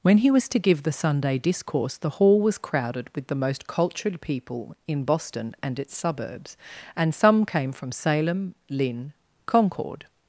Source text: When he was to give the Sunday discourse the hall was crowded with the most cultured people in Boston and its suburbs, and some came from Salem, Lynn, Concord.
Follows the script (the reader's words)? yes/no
yes